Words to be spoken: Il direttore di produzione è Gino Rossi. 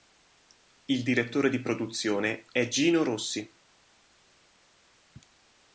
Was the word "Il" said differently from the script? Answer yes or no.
no